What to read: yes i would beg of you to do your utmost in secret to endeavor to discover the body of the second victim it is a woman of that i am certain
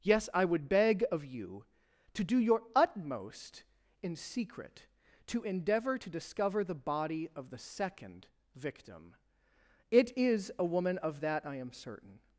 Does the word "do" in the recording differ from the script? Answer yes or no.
no